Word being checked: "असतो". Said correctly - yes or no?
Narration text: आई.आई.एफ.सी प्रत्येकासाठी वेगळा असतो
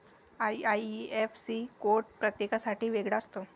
yes